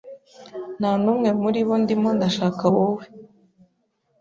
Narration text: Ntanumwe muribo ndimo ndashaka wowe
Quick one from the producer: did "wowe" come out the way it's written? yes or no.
yes